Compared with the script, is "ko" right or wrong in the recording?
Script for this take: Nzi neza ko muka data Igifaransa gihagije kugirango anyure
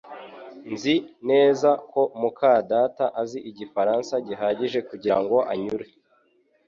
right